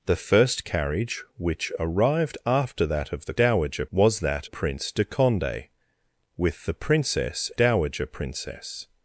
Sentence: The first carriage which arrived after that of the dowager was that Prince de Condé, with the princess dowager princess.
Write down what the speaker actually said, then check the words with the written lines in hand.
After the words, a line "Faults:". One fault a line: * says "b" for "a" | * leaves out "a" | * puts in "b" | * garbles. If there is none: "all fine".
The first carriage which arrived after that of the dowager was that Prince de Condé, with the princess dowager princess.
Faults:
all fine